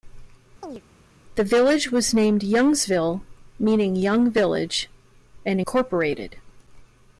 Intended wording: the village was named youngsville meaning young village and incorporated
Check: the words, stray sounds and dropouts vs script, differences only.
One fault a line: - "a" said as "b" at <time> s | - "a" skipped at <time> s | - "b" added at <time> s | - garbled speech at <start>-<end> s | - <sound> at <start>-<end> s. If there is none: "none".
- chirp at 0.6-0.8 s